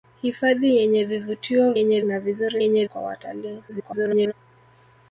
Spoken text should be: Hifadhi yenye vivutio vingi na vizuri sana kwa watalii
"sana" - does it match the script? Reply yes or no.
no